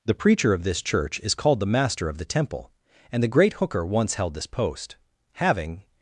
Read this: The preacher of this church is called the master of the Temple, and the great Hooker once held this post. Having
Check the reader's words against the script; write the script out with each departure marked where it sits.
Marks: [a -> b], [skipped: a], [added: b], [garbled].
The preacher of this church is called the master of the Temple, and the great Hooker once held this post. Having